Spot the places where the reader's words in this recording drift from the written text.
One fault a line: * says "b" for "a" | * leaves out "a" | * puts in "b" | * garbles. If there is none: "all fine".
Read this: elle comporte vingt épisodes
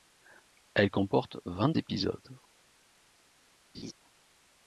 all fine